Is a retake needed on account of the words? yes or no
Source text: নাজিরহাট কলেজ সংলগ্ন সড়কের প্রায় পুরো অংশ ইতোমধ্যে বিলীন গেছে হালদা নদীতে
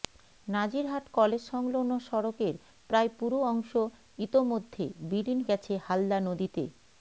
no